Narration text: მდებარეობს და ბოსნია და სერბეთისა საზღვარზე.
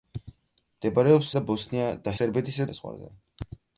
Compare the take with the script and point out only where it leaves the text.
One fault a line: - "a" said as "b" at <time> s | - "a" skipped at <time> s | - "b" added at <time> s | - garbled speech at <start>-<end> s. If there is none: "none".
none